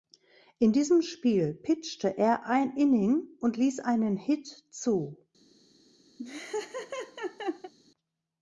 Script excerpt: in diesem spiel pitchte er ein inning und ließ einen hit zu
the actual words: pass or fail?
pass